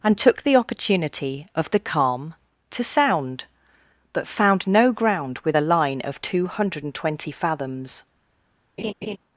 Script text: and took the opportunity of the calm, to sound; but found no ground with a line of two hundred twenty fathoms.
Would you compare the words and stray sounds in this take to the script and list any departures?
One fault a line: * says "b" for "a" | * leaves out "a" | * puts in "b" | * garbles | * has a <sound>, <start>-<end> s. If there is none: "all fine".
* puts in "and"
* has a laugh, 8.8-9.2 s